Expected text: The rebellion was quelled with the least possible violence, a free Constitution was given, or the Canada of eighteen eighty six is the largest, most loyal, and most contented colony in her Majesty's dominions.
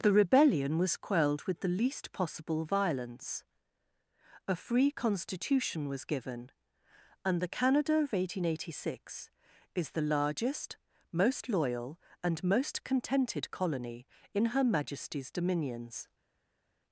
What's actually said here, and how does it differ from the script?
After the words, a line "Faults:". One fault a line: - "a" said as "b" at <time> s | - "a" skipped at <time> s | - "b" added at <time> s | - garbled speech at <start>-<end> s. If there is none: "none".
The rebellion was quelled with the least possible violence, a free Constitution was given, and the Canada of eighteen eighty six is the largest, most loyal, and most contented colony in her Majesty's dominions.
Faults:
- "or" said as "and" at 7.2 s